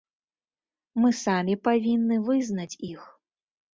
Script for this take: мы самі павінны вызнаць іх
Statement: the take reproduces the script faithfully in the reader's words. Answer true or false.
true